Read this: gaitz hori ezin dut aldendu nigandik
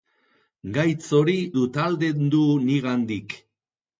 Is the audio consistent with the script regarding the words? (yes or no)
no